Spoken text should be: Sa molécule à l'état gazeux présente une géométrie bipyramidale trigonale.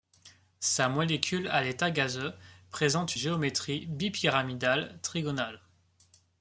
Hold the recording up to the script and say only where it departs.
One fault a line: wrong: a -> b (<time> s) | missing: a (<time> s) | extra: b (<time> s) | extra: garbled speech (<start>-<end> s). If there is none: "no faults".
missing: une (3.2 s)